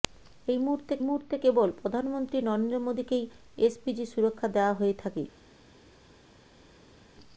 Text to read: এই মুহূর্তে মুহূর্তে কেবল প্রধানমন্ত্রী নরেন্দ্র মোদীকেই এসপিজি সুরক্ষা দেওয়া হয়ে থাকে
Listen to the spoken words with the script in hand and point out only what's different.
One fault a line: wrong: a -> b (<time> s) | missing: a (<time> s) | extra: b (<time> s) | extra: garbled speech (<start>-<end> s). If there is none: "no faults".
no faults